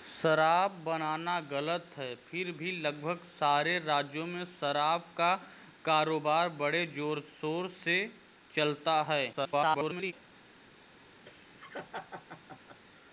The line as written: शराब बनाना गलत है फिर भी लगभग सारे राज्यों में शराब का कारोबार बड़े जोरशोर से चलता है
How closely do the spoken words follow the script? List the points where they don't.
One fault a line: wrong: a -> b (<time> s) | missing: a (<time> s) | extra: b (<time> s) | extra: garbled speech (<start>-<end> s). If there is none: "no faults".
extra: garbled speech (9.3-10.1 s)